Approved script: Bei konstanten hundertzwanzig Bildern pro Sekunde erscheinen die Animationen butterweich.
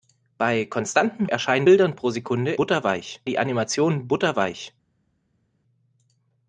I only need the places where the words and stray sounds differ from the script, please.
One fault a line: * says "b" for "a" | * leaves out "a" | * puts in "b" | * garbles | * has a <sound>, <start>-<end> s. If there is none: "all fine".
* says "erscheinen" for "hundertzwanzig"
* says "butterweich" for "erscheinen"